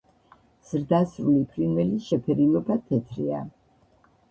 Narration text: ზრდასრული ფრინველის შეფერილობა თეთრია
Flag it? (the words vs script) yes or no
no